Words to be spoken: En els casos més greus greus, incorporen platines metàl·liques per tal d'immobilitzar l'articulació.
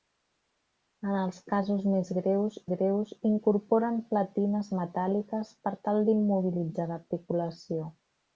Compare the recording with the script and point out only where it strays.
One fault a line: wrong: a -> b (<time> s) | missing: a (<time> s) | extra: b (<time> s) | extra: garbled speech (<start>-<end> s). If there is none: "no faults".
no faults